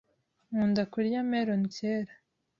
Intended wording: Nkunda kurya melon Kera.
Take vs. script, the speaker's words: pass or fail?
pass